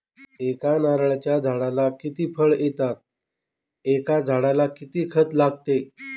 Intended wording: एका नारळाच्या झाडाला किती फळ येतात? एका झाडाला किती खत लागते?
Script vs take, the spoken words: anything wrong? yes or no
no